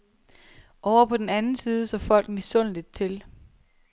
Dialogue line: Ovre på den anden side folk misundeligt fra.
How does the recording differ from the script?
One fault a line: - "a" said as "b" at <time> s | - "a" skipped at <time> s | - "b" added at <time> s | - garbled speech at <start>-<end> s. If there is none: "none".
- "så" added at 1.8 s
- "fra" said as "til" at 2.9 s